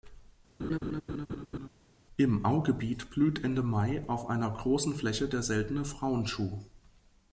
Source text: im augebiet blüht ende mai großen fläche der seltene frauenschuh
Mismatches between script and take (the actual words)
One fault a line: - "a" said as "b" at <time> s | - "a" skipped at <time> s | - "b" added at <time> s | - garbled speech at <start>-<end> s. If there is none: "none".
- "auf einer" added at 4.1 s